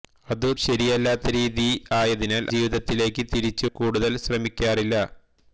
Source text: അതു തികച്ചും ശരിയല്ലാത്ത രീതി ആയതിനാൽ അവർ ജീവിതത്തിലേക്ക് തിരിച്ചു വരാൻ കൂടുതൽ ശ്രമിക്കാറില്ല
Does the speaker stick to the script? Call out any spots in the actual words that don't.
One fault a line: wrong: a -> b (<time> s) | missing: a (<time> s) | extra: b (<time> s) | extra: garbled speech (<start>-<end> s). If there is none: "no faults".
missing: തികച്ചും (0.5 s)
missing: അവർ (2.4 s)
missing: വരാൻ (3.7 s)